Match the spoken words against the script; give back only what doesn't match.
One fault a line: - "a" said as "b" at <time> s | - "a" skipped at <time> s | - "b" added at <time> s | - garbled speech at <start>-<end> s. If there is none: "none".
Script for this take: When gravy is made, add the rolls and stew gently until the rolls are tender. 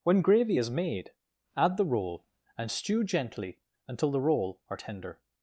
- "rolls" said as "roll" at 1.9 s
- "rolls" said as "roll" at 4.2 s